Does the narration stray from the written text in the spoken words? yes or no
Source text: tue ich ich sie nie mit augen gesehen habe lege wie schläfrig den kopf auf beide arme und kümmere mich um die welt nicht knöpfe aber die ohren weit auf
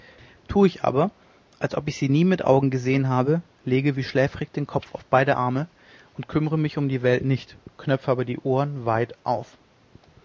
yes